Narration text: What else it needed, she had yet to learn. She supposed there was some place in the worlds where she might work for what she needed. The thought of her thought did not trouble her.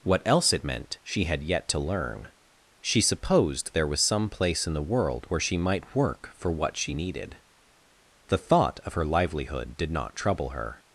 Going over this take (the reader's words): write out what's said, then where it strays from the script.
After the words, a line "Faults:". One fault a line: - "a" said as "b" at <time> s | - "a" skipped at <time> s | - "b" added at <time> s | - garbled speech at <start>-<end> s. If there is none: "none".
What else it meant, she had yet to learn. She supposed there was some place in the world where she might work for what she needed. The thought of her livelihood did not trouble her.
Faults:
- "needed" said as "meant" at 0.6 s
- "worlds" said as "world" at 4.8 s
- "thought" said as "livelihood" at 9.1 s